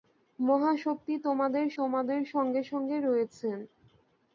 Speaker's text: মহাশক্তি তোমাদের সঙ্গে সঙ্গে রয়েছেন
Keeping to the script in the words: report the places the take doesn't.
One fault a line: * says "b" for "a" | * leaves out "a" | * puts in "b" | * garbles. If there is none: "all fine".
* puts in "তোমাদের"